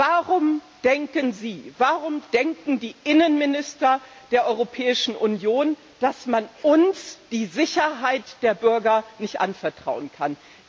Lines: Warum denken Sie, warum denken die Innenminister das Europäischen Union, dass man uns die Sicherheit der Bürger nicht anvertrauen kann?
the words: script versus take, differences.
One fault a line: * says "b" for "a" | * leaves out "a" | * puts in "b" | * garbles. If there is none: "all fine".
* says "der" for "das"